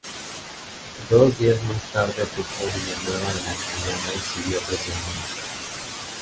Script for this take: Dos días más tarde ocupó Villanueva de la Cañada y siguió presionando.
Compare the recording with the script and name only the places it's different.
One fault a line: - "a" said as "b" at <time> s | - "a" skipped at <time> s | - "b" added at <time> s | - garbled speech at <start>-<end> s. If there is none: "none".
none